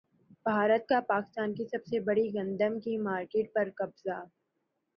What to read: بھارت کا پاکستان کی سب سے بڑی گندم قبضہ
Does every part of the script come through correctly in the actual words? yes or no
no